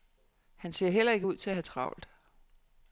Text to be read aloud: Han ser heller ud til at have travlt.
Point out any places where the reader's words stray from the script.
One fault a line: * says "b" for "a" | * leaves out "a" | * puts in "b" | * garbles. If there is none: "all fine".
* puts in "ikke"